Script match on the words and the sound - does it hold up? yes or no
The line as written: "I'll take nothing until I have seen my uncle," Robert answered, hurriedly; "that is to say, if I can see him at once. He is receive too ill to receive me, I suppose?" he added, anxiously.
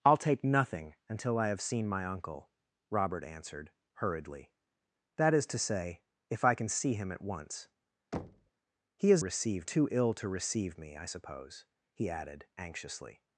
no